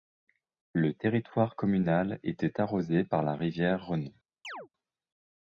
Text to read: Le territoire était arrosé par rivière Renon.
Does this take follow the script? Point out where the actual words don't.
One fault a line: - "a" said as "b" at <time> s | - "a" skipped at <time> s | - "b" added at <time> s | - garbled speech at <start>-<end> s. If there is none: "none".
- "communal" added at 1.6 s
- "la" added at 3.2 s